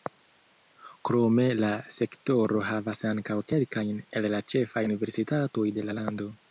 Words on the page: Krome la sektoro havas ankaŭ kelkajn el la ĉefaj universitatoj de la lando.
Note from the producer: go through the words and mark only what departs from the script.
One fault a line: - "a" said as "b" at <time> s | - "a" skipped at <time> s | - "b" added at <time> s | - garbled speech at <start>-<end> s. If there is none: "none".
none